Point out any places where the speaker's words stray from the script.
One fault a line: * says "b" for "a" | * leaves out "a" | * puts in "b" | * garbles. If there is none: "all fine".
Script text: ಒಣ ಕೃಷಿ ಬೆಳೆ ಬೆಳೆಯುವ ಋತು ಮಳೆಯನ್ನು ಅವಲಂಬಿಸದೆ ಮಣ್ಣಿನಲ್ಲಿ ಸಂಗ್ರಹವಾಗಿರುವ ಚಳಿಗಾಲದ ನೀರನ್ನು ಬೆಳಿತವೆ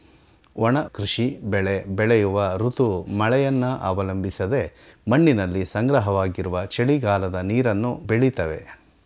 all fine